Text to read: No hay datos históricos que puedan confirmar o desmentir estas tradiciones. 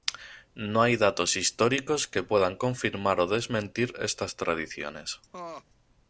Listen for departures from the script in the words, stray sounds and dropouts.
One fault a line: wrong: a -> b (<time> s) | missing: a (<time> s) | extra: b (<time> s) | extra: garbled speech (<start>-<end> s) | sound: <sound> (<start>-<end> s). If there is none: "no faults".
sound: laugh (5.3-5.6 s)